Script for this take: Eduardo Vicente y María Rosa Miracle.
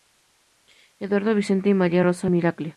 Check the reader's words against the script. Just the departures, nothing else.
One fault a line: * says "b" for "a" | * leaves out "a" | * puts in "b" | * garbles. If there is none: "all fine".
all fine